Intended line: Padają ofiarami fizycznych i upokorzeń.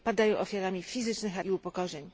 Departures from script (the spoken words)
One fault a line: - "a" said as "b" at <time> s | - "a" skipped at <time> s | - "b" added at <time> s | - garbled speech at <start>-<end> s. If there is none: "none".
none